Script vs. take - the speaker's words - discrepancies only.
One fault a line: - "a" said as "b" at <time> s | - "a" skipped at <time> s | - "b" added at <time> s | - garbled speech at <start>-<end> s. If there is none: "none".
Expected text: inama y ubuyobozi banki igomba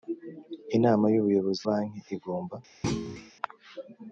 none